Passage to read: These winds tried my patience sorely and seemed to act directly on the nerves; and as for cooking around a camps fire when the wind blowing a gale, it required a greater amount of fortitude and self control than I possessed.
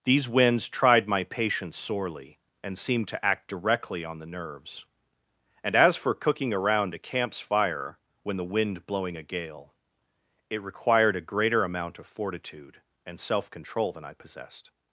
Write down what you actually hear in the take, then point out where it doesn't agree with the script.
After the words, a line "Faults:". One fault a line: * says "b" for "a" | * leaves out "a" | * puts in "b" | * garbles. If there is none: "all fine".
These winds tried my patience sorely and seemed to act directly on the nerves; and as for cooking around a camps fire when the wind blowing a gale, it required a greater amount of fortitude and self control than I possessed.
Faults:
all fine